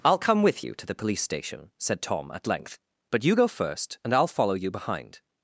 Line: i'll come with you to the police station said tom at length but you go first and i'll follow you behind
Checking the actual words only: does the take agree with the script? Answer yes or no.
yes